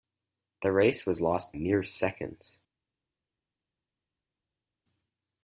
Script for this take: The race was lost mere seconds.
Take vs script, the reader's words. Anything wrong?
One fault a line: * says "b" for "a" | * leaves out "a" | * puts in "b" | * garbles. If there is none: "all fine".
all fine